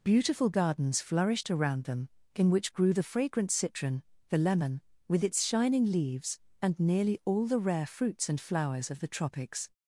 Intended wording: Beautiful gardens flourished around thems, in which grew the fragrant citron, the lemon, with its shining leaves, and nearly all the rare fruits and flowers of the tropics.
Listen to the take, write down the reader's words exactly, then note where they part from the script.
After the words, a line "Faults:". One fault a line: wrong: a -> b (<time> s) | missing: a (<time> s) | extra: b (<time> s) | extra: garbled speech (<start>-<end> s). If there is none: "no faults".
Beautiful gardens flourished around them, in which grew the fragrant citron, the lemon, with its shining leaves, and nearly all the rare fruits and flowers of the tropics.
Faults:
wrong: thems -> them (1.8 s)